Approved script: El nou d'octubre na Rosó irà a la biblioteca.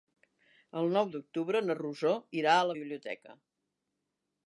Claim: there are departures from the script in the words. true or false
false